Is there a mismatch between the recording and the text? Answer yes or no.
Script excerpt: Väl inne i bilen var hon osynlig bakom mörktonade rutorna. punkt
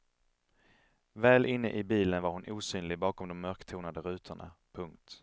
yes